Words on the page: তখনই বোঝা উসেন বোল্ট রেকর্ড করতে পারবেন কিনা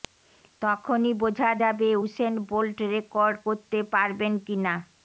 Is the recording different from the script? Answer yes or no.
yes